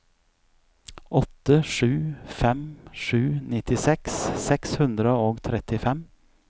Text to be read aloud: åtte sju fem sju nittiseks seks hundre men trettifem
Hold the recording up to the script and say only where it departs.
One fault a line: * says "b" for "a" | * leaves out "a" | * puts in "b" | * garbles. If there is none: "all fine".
* says "og" for "men"